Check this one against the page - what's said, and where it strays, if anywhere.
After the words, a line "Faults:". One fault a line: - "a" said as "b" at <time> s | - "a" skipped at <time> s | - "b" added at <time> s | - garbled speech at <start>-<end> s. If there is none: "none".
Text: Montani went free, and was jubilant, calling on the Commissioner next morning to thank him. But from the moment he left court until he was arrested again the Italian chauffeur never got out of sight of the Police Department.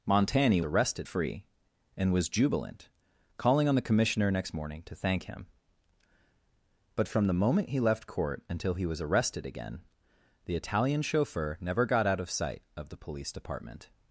Montani arrested free, and was jubilant, calling on the Commissioner next morning to thank him. But from the moment he left court until he was arrested again the Italian chauffeur never got out of sight of the Police Department.
Faults:
- "went" said as "arrested" at 0.6 s